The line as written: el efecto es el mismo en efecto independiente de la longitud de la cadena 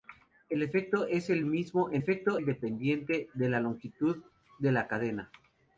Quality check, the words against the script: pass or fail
pass